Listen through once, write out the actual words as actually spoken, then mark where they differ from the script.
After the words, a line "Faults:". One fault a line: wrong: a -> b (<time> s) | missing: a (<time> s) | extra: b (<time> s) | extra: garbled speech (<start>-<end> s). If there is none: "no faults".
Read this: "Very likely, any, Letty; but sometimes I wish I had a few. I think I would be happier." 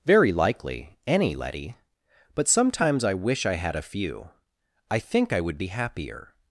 "Very likely, any, Letty; but sometimes I wish I had a few. I think I would be happier."
Faults:
no faults